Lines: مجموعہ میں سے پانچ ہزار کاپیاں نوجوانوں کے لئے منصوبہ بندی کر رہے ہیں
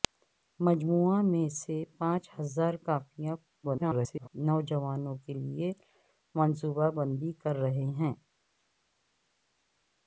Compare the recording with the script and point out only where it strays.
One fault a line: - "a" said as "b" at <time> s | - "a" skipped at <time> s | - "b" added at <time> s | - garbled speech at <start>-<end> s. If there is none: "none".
- garbled speech at 3.6-4.3 s